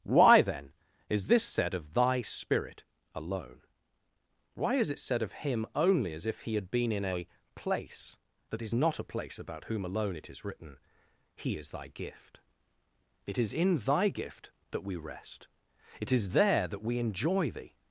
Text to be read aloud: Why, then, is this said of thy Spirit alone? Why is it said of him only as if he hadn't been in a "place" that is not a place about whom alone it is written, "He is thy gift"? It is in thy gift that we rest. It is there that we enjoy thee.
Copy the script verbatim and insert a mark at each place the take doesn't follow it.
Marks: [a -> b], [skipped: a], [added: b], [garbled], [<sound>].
Why, then, is this said of thy Spirit alone? Why is it said of him only as if he [hadn't -> had] been in a "place" that is not a place about whom alone it is written, "He is thy gift"? It is in thy gift that we rest. It is there that we enjoy thee.